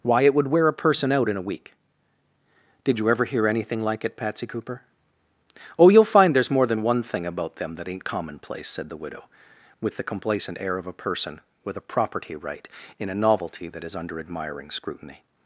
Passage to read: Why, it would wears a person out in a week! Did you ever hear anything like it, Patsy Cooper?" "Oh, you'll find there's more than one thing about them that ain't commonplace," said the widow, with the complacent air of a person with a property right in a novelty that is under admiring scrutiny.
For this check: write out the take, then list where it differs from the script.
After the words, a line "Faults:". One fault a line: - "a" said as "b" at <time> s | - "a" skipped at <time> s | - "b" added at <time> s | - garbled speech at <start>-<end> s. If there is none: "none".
Why, it would wear a person out in a week! Did you ever hear anything like it, Patsy Cooper?" "Oh, you'll find there's more than one thing about them that ain't commonplace," said the widow, with the complacent air of a person with a property right in a novelty that is under admiring scrutiny.
Faults:
- "wears" said as "wear" at 0.5 s